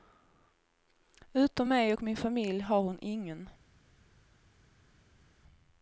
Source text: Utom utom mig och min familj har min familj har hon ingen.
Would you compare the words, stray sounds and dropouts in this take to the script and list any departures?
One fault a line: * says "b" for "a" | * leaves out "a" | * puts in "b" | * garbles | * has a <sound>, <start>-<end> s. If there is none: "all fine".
* leaves out "utom"
* leaves out "min familj har"